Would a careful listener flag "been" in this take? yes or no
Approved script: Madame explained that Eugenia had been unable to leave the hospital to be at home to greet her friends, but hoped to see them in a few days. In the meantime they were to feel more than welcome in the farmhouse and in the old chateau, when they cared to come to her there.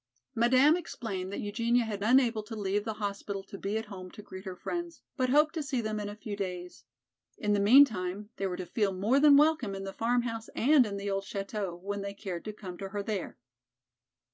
yes